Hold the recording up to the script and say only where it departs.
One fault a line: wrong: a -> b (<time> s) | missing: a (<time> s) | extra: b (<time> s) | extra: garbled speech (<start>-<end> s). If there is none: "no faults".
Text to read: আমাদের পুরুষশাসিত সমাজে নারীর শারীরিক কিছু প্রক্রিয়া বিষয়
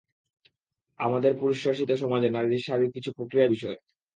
no faults